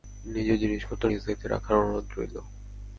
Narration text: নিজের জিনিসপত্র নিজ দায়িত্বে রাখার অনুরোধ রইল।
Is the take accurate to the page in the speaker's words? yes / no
yes